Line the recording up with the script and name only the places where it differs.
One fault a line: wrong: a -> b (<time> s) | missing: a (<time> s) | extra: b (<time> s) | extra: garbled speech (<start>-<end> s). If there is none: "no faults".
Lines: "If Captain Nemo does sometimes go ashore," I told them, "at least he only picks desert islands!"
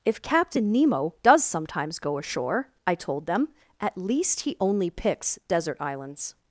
no faults